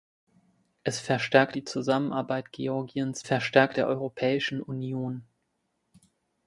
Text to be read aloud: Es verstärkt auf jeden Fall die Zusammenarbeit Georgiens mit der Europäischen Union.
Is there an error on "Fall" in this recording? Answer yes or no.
yes